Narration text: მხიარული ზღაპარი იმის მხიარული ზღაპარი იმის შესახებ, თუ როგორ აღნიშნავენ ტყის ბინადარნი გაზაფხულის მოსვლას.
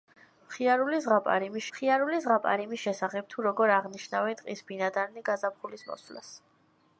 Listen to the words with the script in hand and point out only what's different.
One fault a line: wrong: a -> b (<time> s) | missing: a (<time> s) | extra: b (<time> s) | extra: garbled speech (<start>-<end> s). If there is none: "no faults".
no faults